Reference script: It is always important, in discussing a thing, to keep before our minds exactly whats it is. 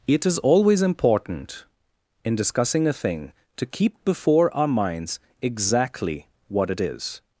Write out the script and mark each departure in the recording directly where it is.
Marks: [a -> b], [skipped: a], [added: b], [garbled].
It is always important, in discussing a thing, to keep before our minds exactly [whats -> what] it is.